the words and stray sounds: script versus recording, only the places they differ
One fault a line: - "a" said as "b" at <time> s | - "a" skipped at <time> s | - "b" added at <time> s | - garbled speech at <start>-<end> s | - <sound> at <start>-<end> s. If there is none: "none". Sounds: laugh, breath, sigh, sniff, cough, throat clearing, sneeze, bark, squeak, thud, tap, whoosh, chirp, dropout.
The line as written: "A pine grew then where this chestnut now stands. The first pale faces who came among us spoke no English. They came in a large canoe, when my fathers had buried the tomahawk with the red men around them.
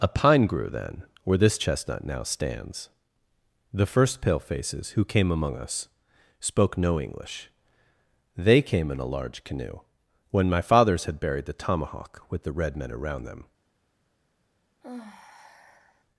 - sigh at 14.8-16.0 s